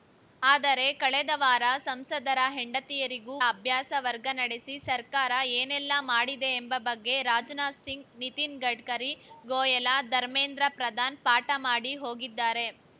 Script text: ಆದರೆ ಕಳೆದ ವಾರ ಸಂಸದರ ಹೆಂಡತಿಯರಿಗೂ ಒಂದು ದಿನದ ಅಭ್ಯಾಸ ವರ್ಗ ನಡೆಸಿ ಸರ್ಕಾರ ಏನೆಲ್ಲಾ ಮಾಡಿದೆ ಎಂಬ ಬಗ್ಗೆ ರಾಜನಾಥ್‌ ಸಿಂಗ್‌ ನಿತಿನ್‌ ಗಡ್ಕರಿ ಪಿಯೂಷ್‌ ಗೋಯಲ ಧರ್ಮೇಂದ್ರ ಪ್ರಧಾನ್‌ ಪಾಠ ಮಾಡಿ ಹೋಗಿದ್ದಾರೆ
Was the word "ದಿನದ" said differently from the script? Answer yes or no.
yes